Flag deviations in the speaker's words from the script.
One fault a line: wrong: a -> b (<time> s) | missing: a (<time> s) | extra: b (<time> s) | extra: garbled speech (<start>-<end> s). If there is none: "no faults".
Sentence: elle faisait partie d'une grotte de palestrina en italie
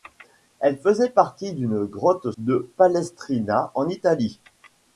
no faults